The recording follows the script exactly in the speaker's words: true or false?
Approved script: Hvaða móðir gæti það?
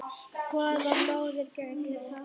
true